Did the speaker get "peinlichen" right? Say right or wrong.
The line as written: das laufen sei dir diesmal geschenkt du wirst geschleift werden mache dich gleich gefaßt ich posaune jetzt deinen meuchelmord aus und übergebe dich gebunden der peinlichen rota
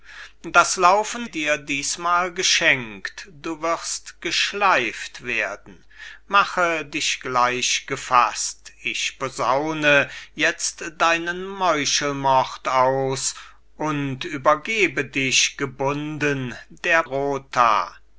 wrong